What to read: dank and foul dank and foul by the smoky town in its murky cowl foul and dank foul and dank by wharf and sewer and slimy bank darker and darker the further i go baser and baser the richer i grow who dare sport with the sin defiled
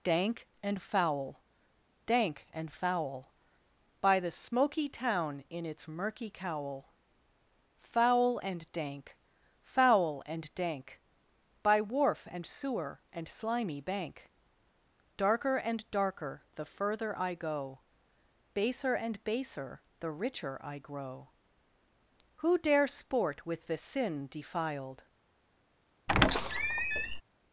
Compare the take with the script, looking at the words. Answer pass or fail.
pass